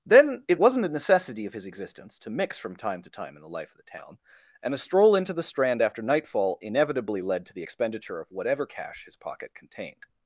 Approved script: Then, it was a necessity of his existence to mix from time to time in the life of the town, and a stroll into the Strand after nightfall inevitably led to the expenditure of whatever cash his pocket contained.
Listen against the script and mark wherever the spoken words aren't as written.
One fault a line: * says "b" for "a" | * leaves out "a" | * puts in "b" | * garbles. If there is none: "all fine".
* says "wasn't" for "was"